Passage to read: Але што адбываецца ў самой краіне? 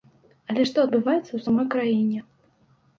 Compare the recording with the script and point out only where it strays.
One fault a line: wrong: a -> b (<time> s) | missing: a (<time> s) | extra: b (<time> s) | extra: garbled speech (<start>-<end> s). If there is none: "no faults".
no faults